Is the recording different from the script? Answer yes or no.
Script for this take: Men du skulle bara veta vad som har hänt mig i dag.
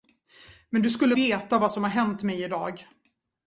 yes